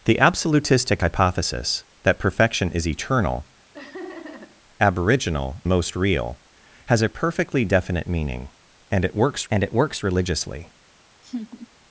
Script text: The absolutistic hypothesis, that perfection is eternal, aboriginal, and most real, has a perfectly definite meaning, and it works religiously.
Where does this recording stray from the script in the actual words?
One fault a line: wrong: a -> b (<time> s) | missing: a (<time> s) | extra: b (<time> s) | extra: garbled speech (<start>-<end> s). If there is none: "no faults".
missing: and (5.6 s)
extra: and it works (9.5 s)